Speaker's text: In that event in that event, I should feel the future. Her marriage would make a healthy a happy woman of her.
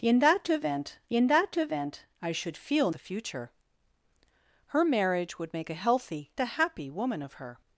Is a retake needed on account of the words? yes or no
no